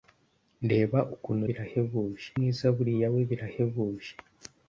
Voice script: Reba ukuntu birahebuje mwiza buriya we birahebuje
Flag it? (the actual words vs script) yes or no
no